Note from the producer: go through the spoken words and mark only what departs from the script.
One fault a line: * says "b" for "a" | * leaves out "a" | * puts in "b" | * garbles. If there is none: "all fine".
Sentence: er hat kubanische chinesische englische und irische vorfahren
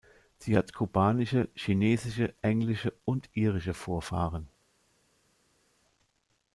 * says "sie" for "er"